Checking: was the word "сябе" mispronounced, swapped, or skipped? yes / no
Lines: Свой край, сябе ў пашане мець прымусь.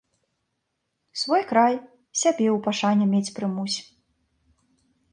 no